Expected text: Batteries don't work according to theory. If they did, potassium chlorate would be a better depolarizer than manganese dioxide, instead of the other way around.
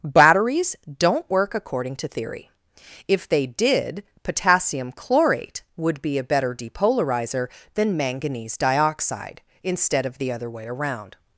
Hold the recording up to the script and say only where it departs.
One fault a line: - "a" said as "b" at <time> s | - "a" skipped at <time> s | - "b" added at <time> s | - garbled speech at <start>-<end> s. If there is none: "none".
none